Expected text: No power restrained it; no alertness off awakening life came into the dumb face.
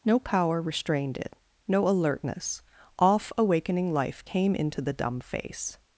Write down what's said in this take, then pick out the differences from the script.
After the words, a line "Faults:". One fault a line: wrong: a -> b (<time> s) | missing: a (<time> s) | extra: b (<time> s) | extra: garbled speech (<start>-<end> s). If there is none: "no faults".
No power restrained it; no alertness off awakening life came into the dumb face.
Faults:
no faults